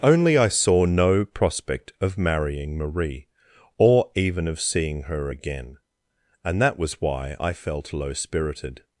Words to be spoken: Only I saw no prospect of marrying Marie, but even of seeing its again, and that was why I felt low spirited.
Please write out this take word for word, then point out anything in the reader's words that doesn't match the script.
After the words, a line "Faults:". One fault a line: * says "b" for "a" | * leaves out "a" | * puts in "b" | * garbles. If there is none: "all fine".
Only I saw no prospect of marrying Marie, or even of seeing her again, and that was why I felt low spirited.
Faults:
* says "or" for "but"
* says "her" for "its"